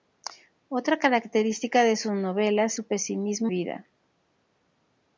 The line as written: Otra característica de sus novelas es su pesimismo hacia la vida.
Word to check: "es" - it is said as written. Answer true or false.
false